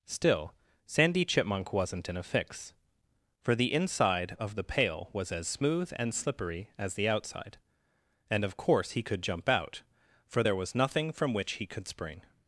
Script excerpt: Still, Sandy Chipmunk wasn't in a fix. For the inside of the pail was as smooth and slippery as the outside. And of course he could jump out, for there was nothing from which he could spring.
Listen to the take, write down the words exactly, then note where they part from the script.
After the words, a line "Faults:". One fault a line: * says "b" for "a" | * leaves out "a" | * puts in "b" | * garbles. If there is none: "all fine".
Still, Sandy Chipmunk wasn't in a fix. For the inside of the pail was as smooth and slippery as the outside. And of course he could jump out, for there was nothing from which he could spring.
Faults:
all fine